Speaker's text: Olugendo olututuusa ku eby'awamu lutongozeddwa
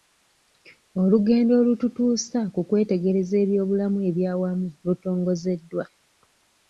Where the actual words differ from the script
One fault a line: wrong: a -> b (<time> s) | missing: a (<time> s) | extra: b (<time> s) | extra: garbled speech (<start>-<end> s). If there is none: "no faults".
extra: kwetegereza ebyobulamu (2.7 s)